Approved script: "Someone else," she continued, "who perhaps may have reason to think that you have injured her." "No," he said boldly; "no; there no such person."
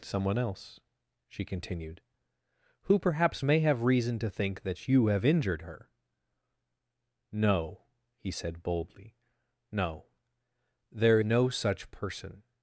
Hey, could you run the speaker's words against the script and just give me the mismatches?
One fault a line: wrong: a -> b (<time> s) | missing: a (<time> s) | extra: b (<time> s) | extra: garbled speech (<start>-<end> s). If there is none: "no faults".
no faults